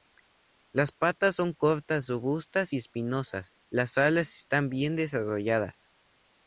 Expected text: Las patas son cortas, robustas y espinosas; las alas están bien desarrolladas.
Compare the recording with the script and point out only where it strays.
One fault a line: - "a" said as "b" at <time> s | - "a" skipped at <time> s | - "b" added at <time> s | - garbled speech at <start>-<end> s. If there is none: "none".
none